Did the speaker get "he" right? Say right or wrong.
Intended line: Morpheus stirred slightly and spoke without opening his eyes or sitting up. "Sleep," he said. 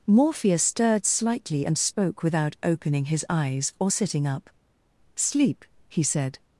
right